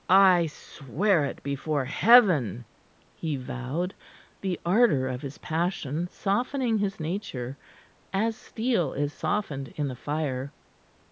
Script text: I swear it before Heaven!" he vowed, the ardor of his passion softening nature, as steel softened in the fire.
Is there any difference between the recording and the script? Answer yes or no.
yes